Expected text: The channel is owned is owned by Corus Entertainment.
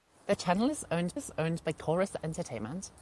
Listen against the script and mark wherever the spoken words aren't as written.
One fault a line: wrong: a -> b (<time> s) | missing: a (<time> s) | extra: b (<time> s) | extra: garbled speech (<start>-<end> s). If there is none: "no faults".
no faults